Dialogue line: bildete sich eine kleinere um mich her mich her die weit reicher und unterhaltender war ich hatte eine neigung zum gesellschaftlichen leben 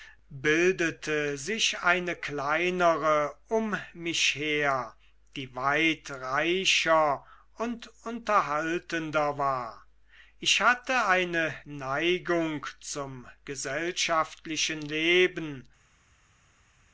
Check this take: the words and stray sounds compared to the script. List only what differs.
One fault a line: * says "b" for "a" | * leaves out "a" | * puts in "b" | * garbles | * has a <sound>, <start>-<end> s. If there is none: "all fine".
* leaves out "mich her"